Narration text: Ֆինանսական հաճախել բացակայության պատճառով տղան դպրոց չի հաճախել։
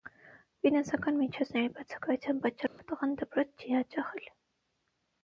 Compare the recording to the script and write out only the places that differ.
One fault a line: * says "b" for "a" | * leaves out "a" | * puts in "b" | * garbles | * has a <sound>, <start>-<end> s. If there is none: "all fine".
* says "միջոցների" for "հաճախել"
* has a dropout, 2.7-2.8 s